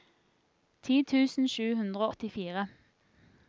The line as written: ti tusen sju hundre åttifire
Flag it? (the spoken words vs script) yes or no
no